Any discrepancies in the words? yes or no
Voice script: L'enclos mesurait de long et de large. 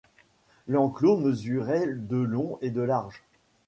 no